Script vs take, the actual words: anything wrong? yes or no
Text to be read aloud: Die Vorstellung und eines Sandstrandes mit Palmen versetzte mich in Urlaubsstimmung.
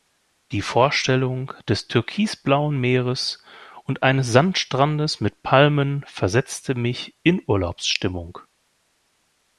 yes